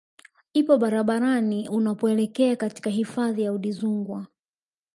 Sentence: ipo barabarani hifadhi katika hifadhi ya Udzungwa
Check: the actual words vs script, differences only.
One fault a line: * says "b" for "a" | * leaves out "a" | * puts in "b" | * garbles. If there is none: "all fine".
* says "unapoelekea" for "hifadhi"